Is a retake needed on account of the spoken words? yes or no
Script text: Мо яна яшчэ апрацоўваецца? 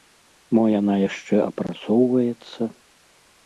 no